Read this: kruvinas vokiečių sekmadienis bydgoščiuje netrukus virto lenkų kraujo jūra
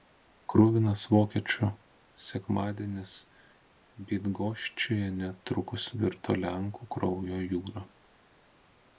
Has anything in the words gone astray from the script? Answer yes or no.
no